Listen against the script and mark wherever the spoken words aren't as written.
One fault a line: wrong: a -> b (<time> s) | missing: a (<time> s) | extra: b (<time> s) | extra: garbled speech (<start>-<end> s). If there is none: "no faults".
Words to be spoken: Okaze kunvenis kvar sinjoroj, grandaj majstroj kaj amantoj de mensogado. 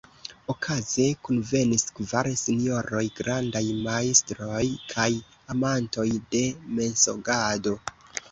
no faults